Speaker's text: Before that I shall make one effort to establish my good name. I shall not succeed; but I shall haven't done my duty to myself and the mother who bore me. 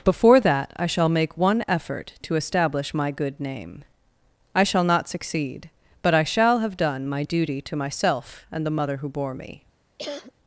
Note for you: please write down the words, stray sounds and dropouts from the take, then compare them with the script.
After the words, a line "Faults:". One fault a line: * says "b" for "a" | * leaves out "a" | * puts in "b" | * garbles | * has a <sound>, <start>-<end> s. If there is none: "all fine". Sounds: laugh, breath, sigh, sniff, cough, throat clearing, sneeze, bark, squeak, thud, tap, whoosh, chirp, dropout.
Before that I shall make one effort to establish my good name. I shall not succeed; but I shall have done my duty to myself and the mother who bore me.
Faults:
* says "have" for "haven't"
* has a cough, 10.0-10.3 s